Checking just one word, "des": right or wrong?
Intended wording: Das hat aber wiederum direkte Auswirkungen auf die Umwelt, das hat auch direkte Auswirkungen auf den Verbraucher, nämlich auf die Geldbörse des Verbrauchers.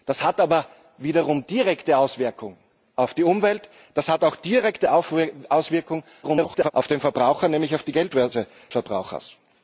wrong